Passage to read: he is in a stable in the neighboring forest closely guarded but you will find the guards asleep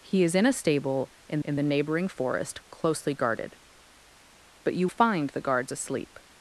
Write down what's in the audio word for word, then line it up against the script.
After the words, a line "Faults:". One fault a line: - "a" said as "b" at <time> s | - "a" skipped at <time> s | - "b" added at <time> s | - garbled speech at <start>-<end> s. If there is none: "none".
he is in a stable in in the neighboring forest closely guarded but you find the guards asleep
Faults:
- "in" added at 1.4 s
- "will" skipped at 4.9 s